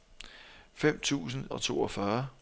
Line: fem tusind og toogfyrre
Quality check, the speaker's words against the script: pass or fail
pass